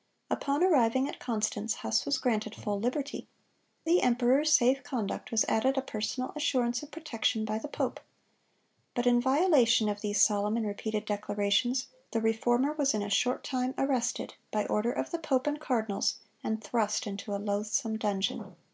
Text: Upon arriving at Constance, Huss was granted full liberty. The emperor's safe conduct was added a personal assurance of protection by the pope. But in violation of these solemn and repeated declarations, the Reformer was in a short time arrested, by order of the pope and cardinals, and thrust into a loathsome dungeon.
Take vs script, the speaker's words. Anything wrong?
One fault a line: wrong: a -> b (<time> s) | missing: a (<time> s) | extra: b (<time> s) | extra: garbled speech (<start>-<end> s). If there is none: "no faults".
no faults